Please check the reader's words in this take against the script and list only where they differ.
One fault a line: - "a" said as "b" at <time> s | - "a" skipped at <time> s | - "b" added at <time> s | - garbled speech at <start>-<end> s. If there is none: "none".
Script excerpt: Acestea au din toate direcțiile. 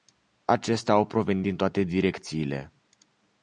- "provenit" added at 1.1 s